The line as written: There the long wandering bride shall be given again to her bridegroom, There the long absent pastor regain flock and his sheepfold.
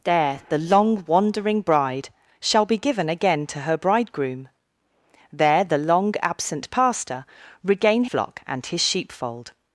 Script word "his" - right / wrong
right